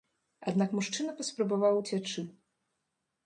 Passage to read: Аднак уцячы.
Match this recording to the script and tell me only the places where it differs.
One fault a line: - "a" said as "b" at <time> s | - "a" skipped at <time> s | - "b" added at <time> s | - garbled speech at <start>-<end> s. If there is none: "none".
- "мужчына паспрабаваў" added at 0.8 s